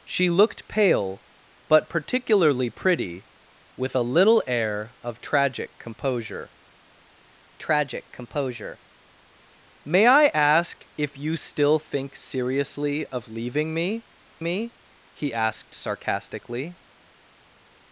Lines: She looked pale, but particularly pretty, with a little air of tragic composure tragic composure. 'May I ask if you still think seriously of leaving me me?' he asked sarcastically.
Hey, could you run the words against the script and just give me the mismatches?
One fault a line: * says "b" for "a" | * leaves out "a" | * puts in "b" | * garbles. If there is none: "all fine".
all fine